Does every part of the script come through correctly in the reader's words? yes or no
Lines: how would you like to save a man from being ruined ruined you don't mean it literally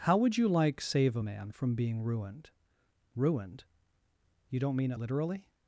no